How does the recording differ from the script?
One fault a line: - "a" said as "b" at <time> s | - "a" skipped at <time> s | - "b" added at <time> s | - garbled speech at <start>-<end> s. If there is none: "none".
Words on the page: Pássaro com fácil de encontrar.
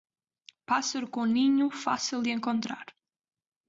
- "ninho" added at 1.2 s